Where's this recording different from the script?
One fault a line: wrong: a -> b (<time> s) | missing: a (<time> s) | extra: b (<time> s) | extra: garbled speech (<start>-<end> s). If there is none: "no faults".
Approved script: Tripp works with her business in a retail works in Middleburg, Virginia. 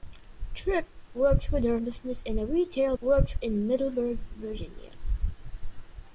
no faults